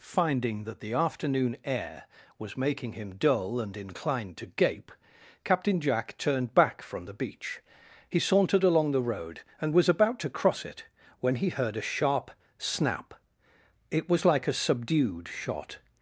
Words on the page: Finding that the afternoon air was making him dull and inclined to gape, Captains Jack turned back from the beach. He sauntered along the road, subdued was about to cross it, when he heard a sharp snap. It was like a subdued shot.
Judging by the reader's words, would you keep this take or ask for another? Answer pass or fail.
fail